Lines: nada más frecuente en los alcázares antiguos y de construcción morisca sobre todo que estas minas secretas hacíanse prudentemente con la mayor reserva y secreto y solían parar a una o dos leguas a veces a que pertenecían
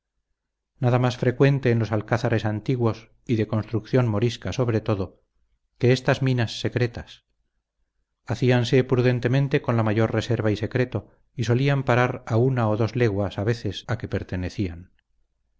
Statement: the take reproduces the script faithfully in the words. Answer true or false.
true